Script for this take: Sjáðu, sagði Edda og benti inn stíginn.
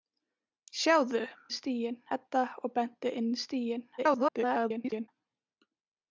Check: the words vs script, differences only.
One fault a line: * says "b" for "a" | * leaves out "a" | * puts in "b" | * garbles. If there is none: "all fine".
* says "stíginn" for "sagði"
* garbles